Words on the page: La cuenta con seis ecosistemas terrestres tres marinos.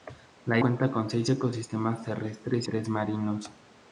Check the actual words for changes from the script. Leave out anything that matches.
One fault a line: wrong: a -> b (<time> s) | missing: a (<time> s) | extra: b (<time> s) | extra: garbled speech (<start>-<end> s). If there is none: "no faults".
no faults